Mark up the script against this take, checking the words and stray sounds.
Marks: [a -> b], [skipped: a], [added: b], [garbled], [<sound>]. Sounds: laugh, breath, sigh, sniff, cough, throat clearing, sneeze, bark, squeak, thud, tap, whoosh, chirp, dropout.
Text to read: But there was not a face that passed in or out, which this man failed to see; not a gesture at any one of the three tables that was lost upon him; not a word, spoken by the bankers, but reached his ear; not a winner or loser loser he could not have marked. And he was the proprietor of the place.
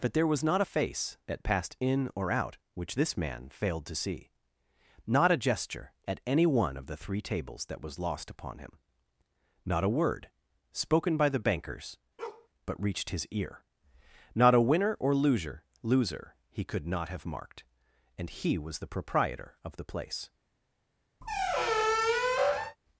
But there was not a face that passed in or out, which this man failed to see; not a gesture at any one of the three tables that was lost upon him; not a word, spoken by the bankers, [bark] but reached his ear; not a winner or loser loser he could not have marked. And he was the proprietor of the place. [squeak]